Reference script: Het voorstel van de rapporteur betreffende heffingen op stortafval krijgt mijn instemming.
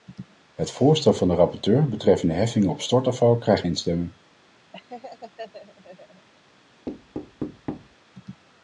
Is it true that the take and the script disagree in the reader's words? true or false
true